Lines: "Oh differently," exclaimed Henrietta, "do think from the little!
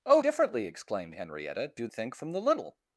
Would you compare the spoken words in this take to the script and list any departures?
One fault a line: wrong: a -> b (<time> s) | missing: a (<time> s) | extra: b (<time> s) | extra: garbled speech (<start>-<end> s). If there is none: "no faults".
no faults